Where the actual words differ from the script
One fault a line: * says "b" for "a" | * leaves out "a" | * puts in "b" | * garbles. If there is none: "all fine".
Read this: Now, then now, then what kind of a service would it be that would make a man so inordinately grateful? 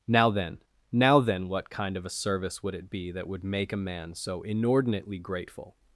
all fine